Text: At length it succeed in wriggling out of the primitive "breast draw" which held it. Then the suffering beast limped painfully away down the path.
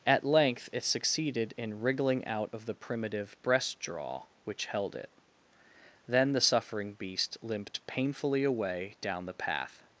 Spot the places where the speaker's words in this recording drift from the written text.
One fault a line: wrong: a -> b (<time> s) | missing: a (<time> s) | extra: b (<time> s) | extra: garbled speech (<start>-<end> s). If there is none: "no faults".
wrong: succeed -> succeeded (0.8 s)